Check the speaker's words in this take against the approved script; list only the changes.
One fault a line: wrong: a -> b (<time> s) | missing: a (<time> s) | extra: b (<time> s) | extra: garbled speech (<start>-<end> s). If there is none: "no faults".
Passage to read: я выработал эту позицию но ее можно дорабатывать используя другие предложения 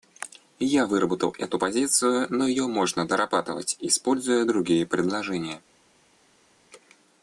no faults